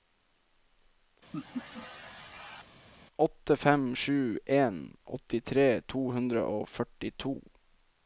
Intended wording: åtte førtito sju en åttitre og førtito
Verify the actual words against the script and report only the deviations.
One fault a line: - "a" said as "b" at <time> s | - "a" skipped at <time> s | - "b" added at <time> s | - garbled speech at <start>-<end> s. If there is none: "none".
- "førtito" said as "fem" at 3.6 s
- "to hundre" added at 5.9 s